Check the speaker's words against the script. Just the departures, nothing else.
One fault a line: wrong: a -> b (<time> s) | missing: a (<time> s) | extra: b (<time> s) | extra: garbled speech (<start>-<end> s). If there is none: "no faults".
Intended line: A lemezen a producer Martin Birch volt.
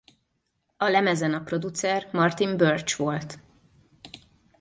no faults